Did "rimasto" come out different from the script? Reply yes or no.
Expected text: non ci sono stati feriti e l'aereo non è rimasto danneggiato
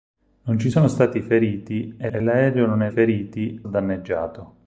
yes